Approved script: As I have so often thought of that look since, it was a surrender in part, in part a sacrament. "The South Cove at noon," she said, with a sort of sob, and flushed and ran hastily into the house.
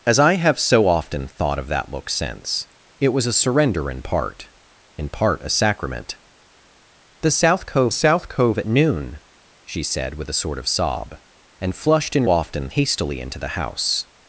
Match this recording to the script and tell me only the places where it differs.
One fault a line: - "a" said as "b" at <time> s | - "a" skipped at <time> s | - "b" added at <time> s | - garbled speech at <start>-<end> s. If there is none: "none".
- "South Cove" added at 7.9 s
- "ran" said as "often" at 12.3 s